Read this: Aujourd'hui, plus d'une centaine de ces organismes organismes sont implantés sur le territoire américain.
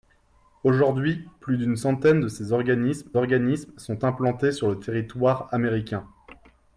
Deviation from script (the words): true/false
false